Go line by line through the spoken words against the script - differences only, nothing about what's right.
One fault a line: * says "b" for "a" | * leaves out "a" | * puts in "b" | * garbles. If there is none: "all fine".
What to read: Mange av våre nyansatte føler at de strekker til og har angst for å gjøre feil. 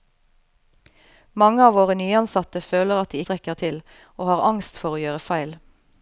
all fine